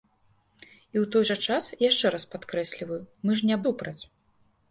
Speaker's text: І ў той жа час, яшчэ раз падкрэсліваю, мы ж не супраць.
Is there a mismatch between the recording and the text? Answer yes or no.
no